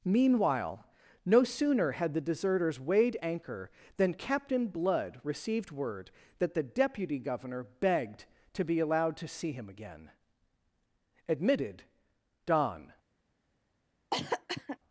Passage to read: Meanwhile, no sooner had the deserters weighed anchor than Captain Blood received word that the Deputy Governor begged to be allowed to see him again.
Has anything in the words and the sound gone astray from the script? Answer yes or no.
yes